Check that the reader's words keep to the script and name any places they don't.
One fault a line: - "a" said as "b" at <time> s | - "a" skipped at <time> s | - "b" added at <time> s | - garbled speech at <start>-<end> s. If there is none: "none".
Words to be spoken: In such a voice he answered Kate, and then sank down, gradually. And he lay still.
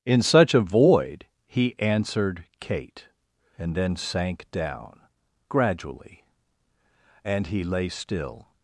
- "voice" said as "void" at 0.6 s